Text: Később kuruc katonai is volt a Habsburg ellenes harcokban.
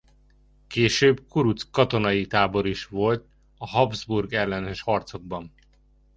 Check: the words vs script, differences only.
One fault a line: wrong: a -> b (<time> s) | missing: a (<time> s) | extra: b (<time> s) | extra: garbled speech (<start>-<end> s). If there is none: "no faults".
extra: tábor (2.2 s)